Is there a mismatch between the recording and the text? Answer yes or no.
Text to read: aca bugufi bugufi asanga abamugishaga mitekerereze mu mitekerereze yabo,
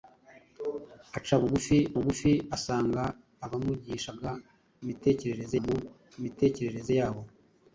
no